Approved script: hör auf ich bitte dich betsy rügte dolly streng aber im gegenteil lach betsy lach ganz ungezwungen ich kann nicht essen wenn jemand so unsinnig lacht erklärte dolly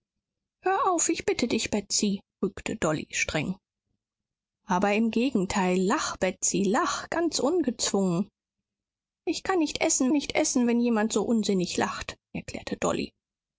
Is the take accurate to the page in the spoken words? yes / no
no